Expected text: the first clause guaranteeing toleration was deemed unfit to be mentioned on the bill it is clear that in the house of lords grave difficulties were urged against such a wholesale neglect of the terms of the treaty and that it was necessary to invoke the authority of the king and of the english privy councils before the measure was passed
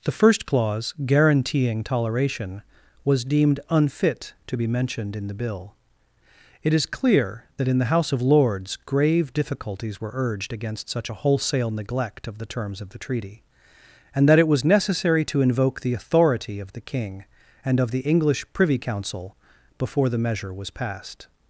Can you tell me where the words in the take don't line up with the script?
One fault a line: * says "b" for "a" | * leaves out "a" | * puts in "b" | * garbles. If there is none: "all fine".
* says "in" for "on"
* says "council" for "councils"